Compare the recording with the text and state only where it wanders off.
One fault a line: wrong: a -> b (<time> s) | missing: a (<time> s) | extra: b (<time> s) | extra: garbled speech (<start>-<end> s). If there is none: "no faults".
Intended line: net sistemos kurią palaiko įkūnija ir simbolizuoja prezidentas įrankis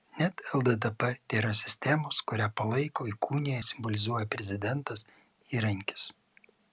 extra: lddp tėra (0.6 s)